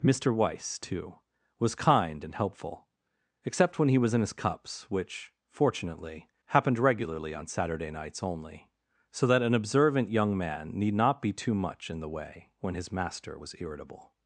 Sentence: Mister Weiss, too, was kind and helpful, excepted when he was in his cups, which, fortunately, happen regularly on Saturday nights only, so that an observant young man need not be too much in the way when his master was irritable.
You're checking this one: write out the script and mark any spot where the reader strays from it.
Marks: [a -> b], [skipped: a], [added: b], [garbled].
Mister Weiss, too, was kind and helpful, [excepted -> except] when he was in his cups, which, fortunately, [happen -> happened] regularly on Saturday nights only, so that an observant young man need not be too much in the way when his master was irritable.